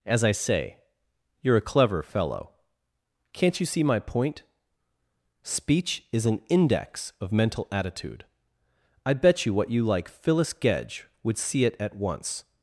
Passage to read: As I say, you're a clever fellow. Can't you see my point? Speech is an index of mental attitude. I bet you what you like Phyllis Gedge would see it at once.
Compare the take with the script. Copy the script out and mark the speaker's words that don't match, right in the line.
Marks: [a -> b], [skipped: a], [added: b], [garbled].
As I say, you're a clever fellow. Can't you see my point? Speech is an index of mental attitude. I bet you what you like Phyllis Gedge would see it at once.